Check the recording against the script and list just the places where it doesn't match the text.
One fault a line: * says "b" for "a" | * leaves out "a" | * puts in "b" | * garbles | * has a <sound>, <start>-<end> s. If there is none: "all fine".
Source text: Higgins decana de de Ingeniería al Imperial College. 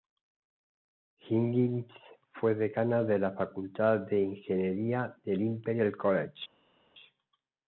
* puts in "fue"
* puts in "la Facultad"
* says "del" for "al"